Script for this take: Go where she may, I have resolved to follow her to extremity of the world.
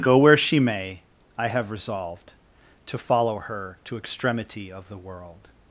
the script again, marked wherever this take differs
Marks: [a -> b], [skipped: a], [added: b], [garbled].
Go where she may, I have resolved to follow her to extremity of the world.